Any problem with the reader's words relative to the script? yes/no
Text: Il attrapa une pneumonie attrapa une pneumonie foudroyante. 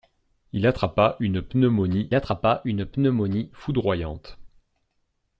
no